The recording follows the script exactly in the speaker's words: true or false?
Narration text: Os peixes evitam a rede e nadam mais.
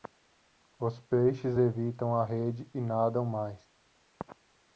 true